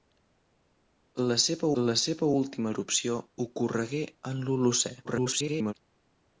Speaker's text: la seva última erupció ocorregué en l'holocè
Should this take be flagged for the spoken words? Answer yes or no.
yes